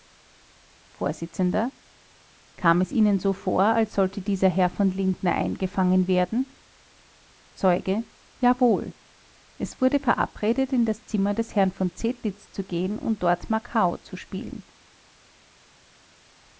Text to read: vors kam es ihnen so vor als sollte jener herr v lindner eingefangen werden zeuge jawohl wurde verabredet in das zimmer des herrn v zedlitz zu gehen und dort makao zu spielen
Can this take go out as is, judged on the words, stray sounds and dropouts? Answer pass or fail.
fail